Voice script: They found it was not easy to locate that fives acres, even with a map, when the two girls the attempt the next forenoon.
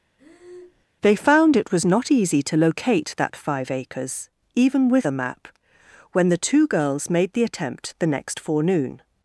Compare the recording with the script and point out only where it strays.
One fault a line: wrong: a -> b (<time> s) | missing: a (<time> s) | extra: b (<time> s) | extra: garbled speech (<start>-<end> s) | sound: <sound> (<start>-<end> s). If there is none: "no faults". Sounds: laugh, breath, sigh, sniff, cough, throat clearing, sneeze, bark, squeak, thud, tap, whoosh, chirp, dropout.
sound: breath (0.2-0.9 s)
wrong: fives -> five (3.4 s)
extra: made (7.1 s)